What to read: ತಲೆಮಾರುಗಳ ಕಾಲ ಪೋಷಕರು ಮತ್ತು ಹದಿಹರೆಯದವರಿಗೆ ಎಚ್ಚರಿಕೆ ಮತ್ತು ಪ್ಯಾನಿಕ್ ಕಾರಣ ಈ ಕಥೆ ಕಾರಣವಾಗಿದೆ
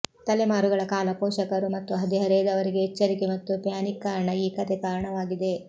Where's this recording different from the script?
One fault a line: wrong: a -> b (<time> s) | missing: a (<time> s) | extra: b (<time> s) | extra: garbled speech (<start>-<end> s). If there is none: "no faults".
no faults